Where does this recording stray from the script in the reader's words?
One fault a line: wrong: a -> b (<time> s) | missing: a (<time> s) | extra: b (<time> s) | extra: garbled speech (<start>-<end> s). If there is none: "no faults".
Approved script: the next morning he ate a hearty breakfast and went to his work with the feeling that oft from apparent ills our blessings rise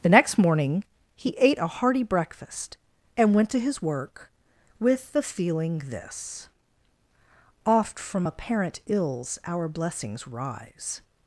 wrong: that -> this (5.8 s)